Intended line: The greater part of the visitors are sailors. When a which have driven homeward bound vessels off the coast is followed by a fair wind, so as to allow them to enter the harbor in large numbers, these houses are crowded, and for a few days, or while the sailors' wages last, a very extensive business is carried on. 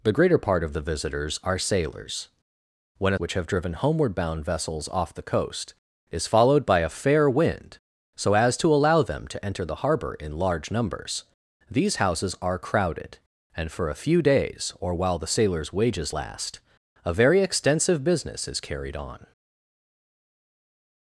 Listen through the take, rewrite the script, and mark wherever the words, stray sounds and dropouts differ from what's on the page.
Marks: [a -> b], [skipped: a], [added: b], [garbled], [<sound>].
The greater part of the visitors are sailors. When a which have driven homeward bound vessels off the coast is followed by a fair wind, so as to allow them to enter the harbor in large numbers, these houses are crowded, and for a few days, or while the sailors' wages last, a very extensive business is carried on.